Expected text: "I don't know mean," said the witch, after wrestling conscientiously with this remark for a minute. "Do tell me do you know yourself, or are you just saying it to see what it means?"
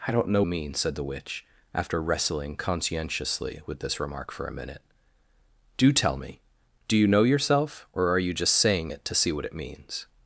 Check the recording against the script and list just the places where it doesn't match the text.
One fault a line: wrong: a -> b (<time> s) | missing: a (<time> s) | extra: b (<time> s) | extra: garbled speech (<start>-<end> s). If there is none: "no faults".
no faults